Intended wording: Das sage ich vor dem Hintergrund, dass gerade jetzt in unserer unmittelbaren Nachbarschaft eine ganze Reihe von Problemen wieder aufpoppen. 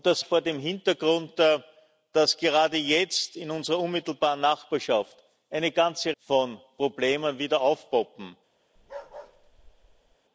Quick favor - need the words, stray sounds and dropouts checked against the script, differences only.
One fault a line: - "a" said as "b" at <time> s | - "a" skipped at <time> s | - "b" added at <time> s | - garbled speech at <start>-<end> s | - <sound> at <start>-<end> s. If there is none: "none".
- "sage" skipped at 0.2 s
- "Reihe" skipped at 6.1 s
- bark at 8.8-10.2 s